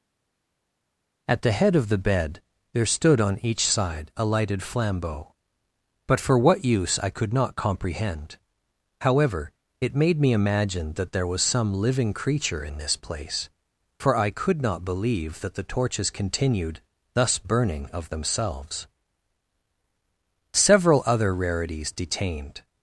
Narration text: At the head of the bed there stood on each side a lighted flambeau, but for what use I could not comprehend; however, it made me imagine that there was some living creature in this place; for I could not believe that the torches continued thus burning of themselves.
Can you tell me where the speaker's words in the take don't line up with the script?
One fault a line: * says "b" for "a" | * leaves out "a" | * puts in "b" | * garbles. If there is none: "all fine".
* puts in "Several other rarities detained"